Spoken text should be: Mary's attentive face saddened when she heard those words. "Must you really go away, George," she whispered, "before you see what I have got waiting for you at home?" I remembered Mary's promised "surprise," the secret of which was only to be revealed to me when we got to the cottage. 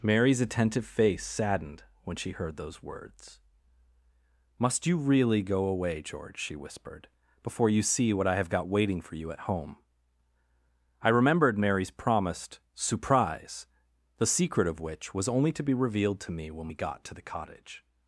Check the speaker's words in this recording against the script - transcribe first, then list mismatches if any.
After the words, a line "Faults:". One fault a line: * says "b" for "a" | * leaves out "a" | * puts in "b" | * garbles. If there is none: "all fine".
Mary's attentive face saddened when she heard those words. "Must you really go away, George," she whispered, "before you see what I have got waiting for you at home?" I remembered Mary's promised "surprise," the secret of which was only to be revealed to me when we got to the cottage.
Faults:
all fine